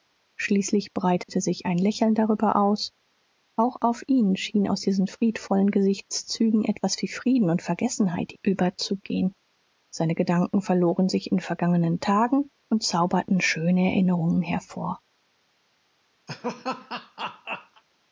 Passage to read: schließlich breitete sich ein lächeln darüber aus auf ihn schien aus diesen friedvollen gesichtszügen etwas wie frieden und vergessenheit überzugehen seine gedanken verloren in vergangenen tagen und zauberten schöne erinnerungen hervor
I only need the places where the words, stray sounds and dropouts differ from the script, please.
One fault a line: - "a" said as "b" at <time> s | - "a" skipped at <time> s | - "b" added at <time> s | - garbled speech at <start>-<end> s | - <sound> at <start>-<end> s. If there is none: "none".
- dropout at 1.2-1.3 s
- "auch" added at 3.5 s
- "sich" added at 11.1 s
- laugh at 16.3-17.8 s